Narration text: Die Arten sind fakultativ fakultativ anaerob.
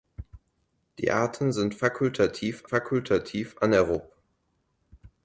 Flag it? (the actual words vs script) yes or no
no